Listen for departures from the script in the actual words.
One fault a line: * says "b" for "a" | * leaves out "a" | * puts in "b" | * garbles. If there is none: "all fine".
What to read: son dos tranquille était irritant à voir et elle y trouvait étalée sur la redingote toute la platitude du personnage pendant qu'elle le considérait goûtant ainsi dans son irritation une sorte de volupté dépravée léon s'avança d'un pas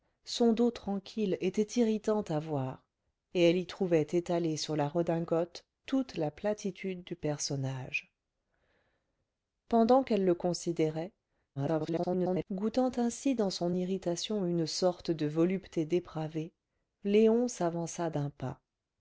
* garbles